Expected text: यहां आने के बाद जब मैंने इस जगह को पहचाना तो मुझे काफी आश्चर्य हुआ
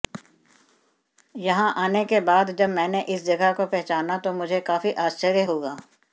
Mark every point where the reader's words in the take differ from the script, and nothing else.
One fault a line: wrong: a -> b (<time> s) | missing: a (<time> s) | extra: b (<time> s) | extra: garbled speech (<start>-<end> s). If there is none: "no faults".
no faults